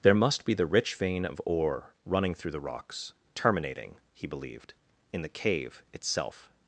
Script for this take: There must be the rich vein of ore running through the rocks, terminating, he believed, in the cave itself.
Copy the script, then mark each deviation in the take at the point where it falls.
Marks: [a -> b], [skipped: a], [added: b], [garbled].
There must be the rich vein of ore running through the rocks, terminating, he believed, in the cave itself.